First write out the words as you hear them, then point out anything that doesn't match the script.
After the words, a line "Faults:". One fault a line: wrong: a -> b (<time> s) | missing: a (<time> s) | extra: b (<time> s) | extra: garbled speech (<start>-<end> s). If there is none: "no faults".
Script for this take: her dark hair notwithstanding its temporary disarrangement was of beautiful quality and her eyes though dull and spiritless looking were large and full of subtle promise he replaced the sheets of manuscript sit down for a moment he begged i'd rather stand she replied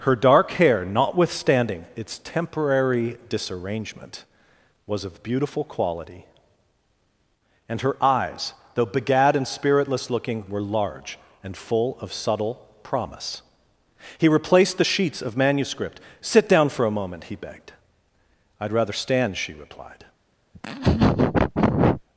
her dark hair notwithstanding its temporary disarrangement was of beautiful quality and her eyes though begad and spiritless looking were large and full of subtle promise he replaced the sheets of manuscript sit down for a moment he begged i'd rather stand she replied
Faults:
wrong: dull -> begad (8.9 s)